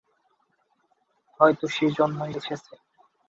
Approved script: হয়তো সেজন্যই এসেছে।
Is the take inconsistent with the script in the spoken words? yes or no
no